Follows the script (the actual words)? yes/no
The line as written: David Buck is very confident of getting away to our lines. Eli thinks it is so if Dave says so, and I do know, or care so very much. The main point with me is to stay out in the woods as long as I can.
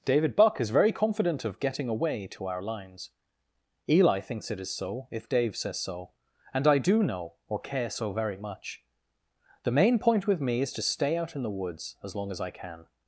yes